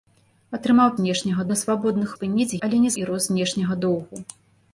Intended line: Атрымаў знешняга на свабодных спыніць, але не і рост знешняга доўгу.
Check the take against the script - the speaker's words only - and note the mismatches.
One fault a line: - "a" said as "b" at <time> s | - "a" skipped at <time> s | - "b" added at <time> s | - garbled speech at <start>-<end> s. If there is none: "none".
none